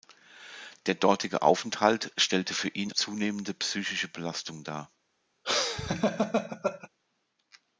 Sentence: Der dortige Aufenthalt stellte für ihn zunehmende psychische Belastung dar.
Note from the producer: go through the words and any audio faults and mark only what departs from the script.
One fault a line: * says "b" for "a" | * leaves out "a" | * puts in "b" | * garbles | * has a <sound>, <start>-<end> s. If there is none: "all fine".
* has a laugh, 5.4-6.9 s